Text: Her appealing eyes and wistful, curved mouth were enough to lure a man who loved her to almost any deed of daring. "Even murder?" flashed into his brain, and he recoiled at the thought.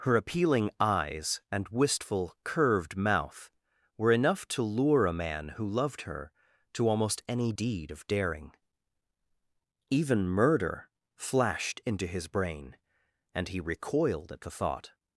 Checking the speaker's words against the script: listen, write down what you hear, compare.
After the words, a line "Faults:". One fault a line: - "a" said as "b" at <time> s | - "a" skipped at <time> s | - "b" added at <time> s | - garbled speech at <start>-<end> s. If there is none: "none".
Her appealing eyes and wistful, curved mouth were enough to lure a man who loved her to almost any deed of daring. "Even murder?" flashed into his brain, and he recoiled at the thought.
Faults:
none